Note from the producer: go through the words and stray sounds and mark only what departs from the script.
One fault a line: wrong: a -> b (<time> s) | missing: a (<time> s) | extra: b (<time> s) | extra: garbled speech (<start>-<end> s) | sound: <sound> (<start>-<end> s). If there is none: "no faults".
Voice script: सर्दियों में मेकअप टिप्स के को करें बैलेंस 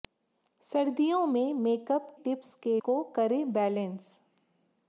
no faults